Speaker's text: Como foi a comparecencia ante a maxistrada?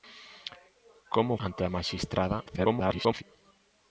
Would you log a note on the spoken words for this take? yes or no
yes